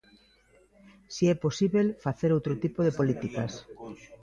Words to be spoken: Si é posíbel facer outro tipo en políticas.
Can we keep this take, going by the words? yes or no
no